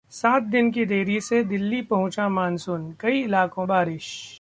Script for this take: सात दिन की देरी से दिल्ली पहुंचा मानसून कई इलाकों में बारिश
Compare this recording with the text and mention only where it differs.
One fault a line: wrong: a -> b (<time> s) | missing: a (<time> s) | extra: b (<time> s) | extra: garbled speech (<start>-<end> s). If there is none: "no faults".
missing: में (3.6 s)